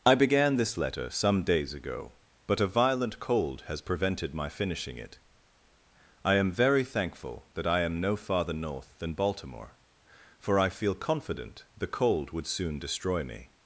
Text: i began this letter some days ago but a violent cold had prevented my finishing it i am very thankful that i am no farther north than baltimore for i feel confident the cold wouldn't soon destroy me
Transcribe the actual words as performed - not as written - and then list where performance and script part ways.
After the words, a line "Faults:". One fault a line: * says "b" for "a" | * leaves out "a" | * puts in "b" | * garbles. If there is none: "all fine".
i began this letter some days ago but a violent cold has prevented my finishing it i am very thankful that i am no farther north than baltimore for i feel confident the cold would soon destroy me
Faults:
* says "has" for "had"
* says "would" for "wouldn't"